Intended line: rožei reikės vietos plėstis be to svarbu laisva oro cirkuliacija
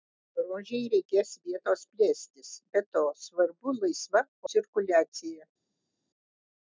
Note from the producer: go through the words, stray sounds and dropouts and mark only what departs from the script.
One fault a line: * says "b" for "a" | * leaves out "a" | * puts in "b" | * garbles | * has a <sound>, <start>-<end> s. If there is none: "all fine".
* leaves out "oro"